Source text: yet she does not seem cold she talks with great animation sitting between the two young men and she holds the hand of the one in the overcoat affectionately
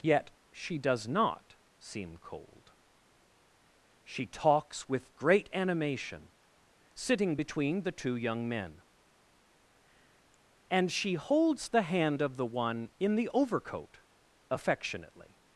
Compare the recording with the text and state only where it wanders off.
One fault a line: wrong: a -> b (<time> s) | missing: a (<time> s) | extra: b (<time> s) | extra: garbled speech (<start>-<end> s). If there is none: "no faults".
no faults